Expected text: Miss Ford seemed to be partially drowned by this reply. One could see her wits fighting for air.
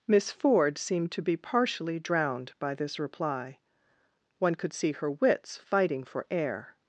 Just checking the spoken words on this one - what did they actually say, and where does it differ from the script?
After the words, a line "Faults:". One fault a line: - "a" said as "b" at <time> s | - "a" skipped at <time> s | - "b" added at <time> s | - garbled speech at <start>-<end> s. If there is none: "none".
Miss Ford seemed to be partially drowned by this reply. One could see her wits fighting for air.
Faults:
none